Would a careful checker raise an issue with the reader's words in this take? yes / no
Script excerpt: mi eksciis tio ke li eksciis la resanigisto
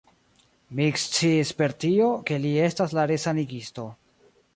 yes